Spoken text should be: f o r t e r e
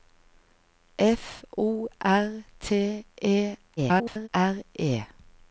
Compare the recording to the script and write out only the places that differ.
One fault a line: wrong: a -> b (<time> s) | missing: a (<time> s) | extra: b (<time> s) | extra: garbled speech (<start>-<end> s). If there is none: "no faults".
extra: garbled speech (3.8-4.3 s)